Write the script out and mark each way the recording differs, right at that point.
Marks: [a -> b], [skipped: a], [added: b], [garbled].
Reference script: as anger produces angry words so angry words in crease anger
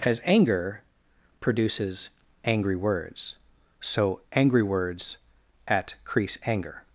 as anger produces angry words so angry words [in -> at] crease anger